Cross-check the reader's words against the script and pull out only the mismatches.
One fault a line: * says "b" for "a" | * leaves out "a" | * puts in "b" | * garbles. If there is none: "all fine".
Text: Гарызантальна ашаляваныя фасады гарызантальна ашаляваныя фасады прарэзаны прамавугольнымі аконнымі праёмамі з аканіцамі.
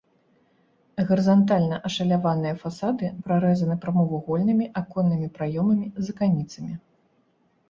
* leaves out "гарызантальна ашаляваныя фасады"